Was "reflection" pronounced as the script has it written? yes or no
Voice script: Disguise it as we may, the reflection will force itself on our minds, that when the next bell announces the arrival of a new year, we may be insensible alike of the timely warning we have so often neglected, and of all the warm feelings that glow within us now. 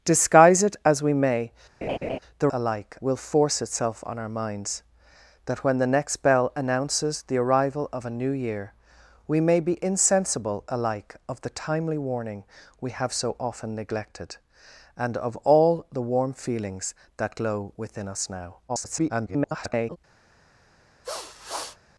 no